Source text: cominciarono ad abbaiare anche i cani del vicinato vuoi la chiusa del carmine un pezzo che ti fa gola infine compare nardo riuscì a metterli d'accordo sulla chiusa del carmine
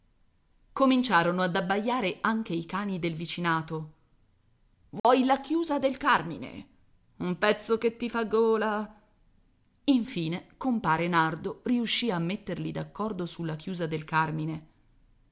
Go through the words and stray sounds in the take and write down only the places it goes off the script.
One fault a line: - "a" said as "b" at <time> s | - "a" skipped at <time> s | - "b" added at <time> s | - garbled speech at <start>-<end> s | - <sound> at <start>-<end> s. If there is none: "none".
- dropout at 5.0-5.0 s